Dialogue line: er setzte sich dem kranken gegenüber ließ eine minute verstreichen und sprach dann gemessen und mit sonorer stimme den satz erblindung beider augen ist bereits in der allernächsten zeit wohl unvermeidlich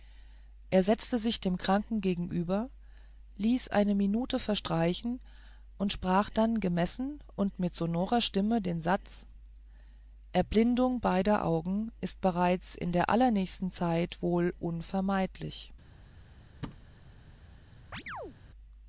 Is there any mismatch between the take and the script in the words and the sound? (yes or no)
yes